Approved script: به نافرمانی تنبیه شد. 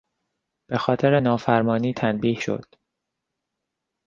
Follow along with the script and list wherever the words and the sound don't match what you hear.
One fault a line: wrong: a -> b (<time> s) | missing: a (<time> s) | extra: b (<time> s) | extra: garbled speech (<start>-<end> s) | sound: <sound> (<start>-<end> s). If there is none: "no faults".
extra: خاطر (0.8 s)